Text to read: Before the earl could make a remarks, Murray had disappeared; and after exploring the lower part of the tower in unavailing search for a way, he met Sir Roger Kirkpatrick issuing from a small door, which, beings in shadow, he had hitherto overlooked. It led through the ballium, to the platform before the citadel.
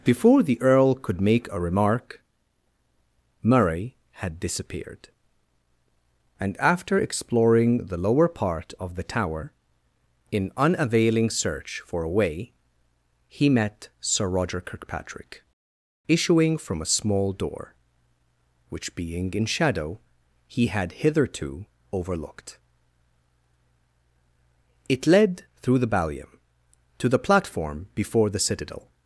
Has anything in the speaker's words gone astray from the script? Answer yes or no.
yes